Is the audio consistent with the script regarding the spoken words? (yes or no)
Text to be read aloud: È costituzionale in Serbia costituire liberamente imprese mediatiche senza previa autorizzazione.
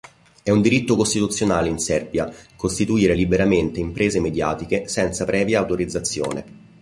no